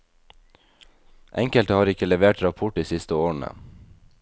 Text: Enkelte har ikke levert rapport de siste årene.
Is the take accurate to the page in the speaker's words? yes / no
yes